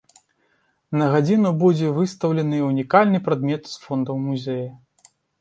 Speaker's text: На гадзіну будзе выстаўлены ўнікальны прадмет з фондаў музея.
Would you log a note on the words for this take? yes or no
no